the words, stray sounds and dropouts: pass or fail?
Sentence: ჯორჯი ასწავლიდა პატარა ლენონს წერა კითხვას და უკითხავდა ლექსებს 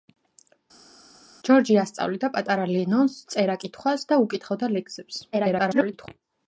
fail